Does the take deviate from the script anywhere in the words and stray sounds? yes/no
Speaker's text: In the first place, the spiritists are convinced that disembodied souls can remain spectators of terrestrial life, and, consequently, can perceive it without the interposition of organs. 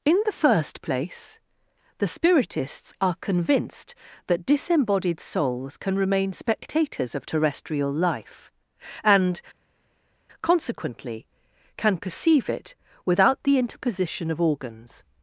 no